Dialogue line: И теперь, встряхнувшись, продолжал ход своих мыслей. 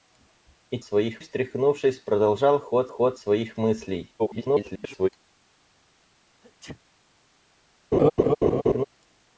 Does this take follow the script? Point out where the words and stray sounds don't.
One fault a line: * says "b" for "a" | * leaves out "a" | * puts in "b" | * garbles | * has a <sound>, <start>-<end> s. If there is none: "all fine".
* says "своих" for "теперь"
* puts in "ход"
* garbles
* has a sneeze, 6.4-6.8 s
* has a laugh, 7.9-8.8 s